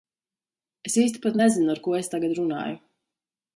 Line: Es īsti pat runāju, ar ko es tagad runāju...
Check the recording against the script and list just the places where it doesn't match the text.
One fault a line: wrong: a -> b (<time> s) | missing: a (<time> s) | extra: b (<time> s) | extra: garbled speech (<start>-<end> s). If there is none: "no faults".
wrong: runāju -> nezinu (1.4 s)